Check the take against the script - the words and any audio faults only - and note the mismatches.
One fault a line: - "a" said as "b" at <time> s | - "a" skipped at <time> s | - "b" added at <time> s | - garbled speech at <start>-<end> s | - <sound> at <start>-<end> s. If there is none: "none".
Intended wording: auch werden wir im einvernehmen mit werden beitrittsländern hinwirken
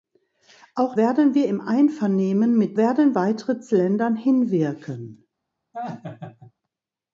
- laugh at 5.7-6.5 s